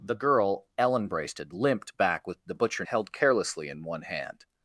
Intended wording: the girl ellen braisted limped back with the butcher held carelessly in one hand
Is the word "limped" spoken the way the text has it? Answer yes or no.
yes